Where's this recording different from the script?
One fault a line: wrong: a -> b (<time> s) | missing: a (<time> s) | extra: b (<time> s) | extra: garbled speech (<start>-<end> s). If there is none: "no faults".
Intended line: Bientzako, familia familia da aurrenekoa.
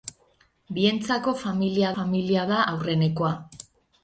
no faults